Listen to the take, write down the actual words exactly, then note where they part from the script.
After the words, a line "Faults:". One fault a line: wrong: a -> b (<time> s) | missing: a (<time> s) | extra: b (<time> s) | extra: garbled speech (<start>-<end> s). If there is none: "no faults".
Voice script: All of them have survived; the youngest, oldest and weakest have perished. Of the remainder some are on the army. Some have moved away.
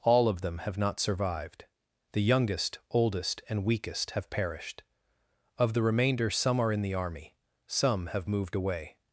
All of them have not survived; the youngest, oldest and weakest have perished. Of the remainder some are in the army. Some have moved away.
Faults:
extra: not (0.8 s)
wrong: on -> in (6.7 s)